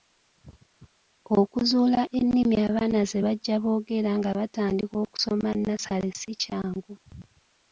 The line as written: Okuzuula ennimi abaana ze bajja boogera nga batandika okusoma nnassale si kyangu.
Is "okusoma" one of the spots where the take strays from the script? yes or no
no